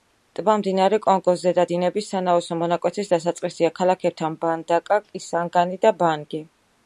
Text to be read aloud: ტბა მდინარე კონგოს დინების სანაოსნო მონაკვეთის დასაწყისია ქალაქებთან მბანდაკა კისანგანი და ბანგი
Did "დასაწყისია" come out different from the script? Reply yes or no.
no